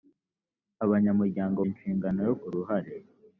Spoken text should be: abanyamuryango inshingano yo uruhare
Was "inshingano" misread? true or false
false